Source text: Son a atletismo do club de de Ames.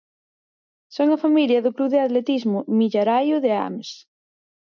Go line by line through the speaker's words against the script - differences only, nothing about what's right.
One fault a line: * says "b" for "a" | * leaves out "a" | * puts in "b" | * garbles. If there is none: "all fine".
* says "familia" for "atletismo"
* puts in "atletismo Millaraio"